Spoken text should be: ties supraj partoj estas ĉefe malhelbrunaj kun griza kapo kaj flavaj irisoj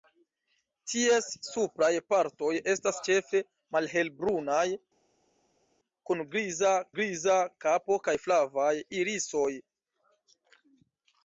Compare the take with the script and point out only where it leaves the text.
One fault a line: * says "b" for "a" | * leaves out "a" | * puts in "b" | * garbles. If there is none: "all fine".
* puts in "griza"